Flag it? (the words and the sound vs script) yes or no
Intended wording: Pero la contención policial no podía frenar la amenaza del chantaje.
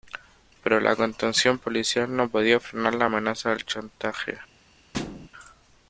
yes